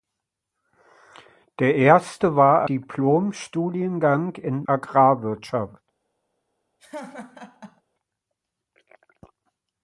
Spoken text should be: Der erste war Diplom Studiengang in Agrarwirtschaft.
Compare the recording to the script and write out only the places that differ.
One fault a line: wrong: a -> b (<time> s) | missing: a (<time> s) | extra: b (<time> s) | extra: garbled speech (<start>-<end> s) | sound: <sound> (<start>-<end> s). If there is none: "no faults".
sound: laugh (6.8-7.8 s)